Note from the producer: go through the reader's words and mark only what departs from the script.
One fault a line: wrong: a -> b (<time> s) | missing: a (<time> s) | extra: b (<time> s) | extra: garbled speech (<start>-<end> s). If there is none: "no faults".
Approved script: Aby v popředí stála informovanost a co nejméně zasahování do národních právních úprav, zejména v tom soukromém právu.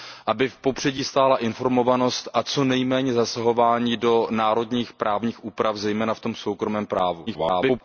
extra: garbled speech (7.3-7.8 s)